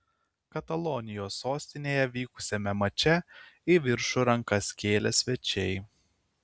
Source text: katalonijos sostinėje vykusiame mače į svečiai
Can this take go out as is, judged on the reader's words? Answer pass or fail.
fail